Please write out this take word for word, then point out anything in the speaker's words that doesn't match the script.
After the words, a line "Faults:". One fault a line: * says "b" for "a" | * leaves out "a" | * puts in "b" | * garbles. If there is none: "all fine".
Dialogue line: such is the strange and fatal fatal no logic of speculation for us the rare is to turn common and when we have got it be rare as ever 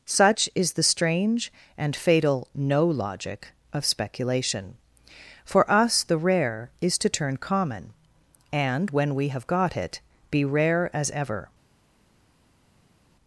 such is the strange and fatal no logic of speculation for us the rare is to turn common and when we have got it be rare as ever
Faults:
* leaves out "fatal"